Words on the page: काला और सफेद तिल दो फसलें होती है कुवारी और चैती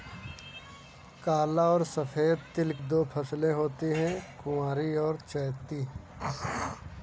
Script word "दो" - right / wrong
right